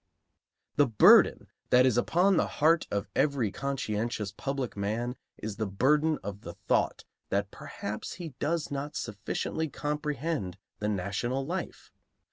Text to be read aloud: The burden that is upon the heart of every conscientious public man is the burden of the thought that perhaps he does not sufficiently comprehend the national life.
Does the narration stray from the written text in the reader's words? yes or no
no